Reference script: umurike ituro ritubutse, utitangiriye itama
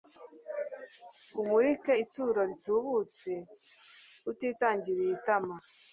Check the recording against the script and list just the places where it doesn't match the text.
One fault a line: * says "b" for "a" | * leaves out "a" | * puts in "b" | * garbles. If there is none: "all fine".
all fine